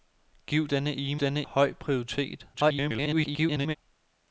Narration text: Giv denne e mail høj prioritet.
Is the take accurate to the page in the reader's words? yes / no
no